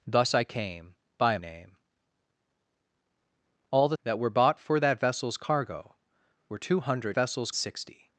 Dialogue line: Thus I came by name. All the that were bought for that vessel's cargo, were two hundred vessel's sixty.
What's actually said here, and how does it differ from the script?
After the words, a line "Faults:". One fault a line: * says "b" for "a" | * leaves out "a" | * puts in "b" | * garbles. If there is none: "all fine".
Thus I came by name. All the that were bought for that vessel's cargo, were two hundred vessel's sixty.
Faults:
all fine